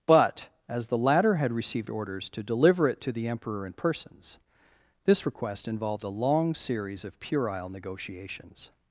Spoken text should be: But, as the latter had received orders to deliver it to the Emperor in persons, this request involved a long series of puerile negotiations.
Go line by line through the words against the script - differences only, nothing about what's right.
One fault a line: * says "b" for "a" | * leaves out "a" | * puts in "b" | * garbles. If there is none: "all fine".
all fine